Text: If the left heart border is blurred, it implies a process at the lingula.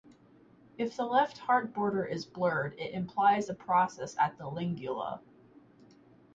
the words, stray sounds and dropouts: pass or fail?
pass